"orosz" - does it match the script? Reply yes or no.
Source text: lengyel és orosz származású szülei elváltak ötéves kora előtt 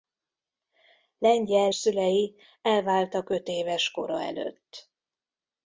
no